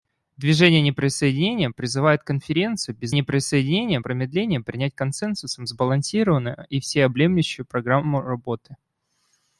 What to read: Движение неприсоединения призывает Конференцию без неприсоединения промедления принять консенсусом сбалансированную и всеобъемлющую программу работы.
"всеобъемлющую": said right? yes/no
yes